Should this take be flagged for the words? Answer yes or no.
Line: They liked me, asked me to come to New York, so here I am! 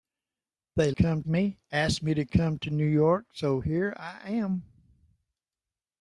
yes